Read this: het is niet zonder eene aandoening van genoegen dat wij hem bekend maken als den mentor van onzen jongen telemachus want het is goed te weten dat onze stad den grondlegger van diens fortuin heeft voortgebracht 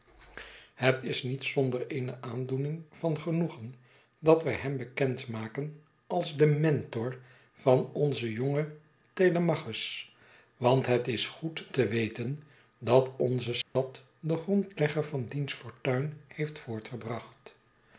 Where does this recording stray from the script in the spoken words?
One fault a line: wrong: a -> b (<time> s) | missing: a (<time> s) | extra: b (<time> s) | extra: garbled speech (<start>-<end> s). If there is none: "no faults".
no faults